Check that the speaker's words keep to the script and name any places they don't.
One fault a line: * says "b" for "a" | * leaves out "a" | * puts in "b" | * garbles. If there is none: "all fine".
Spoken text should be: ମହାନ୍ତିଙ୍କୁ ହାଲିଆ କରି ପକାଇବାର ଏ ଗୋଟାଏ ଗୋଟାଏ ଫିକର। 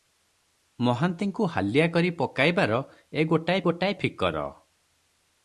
all fine